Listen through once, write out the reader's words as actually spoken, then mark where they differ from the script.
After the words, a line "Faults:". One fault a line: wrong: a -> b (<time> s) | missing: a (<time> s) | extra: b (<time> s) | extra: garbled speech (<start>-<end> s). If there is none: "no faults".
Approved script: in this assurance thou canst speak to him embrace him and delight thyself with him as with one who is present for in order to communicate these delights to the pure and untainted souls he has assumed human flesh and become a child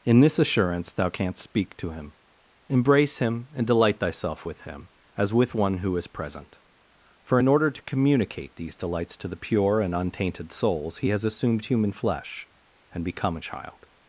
in this assurance thou canst speak to him embrace him and delight thyself with him as with one who is present for in order to communicate these delights to the pure and untainted souls he has assumed human flesh and become a child
Faults:
no faults